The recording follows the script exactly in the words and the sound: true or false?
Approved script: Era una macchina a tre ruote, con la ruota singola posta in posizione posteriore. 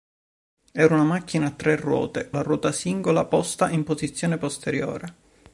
false